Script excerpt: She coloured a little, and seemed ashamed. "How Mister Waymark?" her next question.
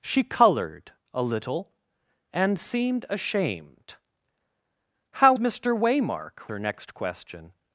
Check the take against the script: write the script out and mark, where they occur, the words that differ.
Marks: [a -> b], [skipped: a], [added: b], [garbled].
She coloured a little, and seemed ashamed. "How Mister Waymark?" her next question.